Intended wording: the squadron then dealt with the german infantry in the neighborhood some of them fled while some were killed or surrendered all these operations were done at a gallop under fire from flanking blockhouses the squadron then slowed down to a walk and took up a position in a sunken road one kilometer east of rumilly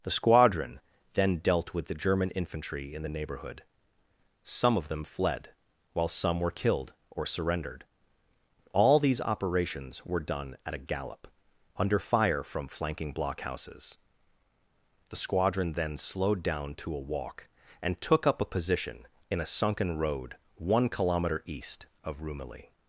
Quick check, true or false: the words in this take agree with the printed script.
true